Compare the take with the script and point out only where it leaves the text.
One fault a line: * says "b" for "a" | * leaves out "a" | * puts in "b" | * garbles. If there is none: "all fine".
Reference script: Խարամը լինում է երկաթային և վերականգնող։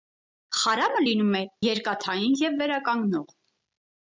all fine